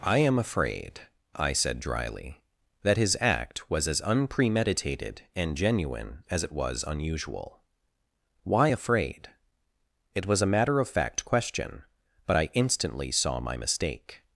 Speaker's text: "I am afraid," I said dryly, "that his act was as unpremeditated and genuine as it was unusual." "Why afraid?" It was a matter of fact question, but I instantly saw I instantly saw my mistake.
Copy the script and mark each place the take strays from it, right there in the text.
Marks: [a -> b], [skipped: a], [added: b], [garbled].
"I am afraid," I said dryly, "that his act was as unpremeditated and genuine as it was unusual." "Why afraid?" It was a matter of fact question, but I instantly saw [skipped: I instantly saw] my mistake.